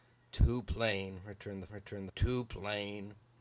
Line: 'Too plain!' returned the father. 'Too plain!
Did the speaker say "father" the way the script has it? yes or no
no